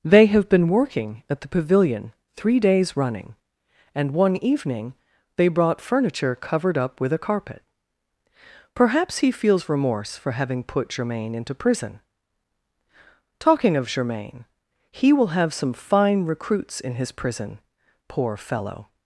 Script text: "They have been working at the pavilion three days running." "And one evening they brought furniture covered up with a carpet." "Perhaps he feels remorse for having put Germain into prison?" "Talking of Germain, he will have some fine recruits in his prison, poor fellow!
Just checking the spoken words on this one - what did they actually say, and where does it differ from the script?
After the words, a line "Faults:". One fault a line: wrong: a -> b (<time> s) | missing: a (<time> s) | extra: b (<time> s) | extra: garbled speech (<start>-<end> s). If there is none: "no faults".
"They have been working at the pavilion three days running." "And one evening they brought furniture covered up with a carpet." "Perhaps he feels remorse for having put Germain into prison?" "Talking of Germain, he will have some fine recruits in his prison, poor fellow!
Faults:
no faults